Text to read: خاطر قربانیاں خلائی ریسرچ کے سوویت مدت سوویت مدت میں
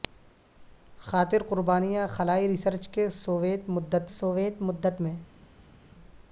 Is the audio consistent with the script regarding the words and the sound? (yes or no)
yes